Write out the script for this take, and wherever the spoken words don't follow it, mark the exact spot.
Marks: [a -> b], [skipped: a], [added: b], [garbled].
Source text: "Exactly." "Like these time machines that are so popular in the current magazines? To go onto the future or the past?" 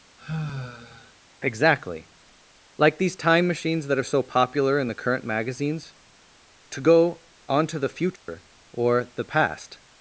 "Exactly." "Like these time machines that are so popular in the current magazines? To go onto the future or the past?"